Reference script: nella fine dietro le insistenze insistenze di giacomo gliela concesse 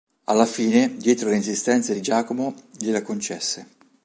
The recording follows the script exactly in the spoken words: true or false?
false